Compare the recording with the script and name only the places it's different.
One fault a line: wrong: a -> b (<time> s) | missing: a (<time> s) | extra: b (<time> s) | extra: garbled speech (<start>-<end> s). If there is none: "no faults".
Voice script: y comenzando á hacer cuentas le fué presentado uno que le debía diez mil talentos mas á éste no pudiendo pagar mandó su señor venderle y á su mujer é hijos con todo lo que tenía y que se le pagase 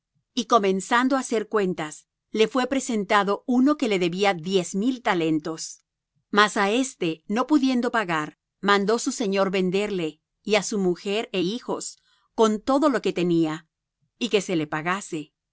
no faults